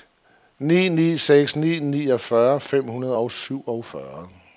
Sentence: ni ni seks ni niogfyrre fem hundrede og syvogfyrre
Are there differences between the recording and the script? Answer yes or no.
no